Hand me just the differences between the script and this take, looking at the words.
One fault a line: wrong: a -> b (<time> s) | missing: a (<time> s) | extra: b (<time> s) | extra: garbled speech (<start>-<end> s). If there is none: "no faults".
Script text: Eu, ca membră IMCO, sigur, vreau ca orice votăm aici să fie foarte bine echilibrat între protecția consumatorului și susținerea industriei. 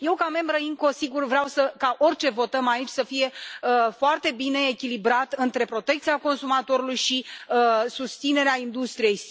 no faults